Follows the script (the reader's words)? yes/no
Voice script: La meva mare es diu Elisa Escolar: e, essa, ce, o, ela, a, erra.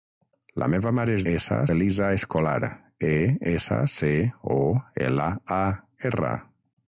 no